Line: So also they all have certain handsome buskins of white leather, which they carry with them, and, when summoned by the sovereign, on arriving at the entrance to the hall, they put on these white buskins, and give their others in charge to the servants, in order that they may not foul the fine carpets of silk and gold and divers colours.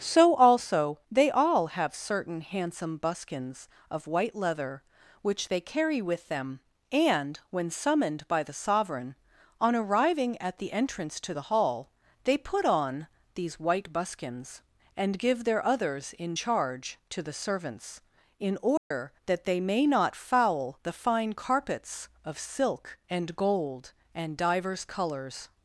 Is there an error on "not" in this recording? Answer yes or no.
no